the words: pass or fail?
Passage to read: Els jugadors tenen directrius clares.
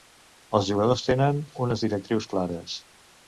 fail